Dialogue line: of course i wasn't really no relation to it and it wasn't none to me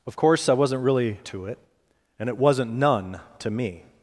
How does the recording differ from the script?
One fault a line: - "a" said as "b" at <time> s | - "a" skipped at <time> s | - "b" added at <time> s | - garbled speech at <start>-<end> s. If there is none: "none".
- "no relation" skipped at 1.2 s